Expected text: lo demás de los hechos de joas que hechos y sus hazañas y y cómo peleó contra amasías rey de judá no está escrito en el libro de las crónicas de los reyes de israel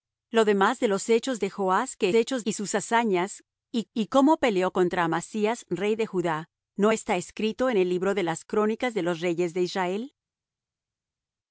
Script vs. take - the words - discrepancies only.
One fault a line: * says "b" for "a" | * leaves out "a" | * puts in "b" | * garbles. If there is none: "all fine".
all fine